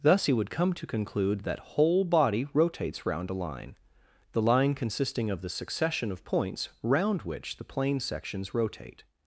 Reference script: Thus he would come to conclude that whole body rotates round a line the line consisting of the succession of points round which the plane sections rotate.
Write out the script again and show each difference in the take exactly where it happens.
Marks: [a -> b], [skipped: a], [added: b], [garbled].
Thus he would come to conclude that whole body rotates round a line the line consisting of the succession of points round which the plane sections rotate.